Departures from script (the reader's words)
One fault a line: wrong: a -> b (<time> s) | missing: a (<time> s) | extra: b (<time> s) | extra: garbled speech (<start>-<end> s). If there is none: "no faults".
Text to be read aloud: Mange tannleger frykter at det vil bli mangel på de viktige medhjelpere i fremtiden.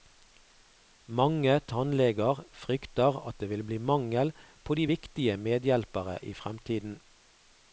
no faults